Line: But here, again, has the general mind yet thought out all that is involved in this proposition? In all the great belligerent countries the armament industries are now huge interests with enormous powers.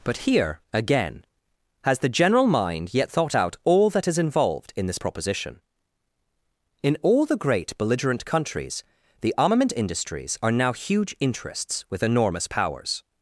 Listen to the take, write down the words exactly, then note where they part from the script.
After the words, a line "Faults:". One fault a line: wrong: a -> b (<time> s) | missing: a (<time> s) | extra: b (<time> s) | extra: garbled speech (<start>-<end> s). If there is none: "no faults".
But here, again, has the general mind yet thought out all that is involved in this proposition? In all the great belligerent countries the armament industries are now huge interests with enormous powers.
Faults:
no faults